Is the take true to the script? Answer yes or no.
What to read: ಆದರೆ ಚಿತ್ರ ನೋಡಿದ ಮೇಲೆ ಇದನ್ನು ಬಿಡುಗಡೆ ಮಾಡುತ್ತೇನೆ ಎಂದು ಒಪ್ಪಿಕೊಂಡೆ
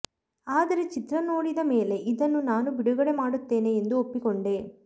no